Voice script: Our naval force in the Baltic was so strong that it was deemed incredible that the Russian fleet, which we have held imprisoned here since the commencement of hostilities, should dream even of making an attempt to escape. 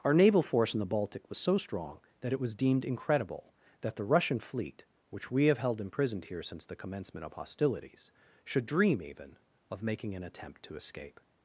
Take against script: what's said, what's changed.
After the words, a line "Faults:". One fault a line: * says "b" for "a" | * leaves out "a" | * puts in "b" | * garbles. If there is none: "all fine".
Our naval force in the Baltic was so strong that it was deemed incredible that the Russian fleet, which we have held imprisoned here since the commencement of hostilities, should dream even of making an attempt to escape.
Faults:
all fine